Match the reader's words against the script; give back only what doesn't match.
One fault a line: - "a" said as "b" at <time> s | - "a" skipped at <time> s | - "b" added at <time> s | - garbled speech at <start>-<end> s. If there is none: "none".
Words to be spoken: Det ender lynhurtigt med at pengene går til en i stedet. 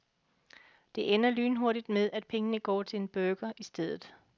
- "burger" added at 3.1 s